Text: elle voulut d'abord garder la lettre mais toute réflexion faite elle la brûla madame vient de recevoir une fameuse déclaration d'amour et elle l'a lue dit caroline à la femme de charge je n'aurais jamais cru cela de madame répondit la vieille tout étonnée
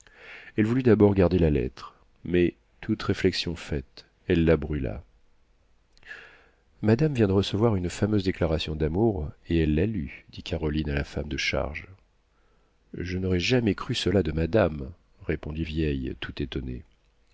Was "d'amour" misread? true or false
false